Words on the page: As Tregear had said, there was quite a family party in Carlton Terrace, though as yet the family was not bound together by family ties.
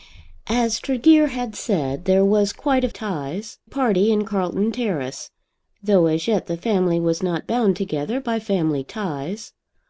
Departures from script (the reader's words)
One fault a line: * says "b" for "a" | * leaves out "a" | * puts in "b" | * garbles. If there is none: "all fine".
* says "ties" for "family"